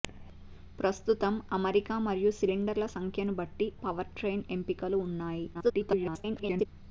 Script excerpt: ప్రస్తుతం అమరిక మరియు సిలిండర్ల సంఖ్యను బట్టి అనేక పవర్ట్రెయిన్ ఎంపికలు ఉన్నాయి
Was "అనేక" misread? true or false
true